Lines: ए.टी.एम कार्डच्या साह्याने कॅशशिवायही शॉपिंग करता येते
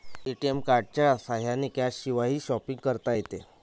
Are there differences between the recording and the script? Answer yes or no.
no